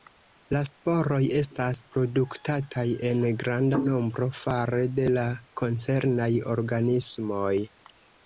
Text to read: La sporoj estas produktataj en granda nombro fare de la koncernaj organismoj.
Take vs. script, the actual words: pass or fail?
pass